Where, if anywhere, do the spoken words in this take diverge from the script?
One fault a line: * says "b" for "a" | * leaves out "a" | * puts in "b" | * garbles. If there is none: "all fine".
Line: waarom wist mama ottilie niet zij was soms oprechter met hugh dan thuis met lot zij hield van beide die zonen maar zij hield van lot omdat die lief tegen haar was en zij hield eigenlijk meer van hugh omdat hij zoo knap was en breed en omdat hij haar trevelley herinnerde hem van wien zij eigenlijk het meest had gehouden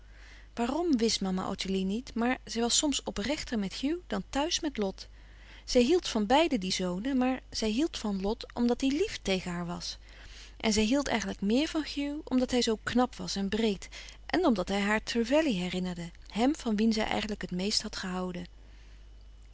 * puts in "maar"